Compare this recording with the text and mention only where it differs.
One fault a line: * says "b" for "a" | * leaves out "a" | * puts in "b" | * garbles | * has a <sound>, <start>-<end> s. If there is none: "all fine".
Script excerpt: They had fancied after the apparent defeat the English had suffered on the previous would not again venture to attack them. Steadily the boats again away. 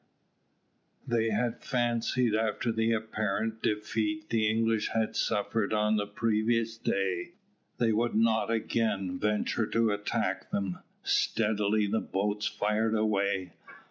* puts in "day they"
* says "fired" for "again"